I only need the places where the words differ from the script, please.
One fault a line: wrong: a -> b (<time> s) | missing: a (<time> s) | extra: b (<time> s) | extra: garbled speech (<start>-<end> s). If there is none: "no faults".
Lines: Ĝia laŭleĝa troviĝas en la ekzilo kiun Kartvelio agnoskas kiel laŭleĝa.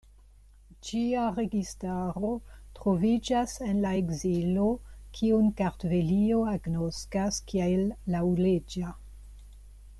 wrong: laŭleĝa -> registaro (1.4 s)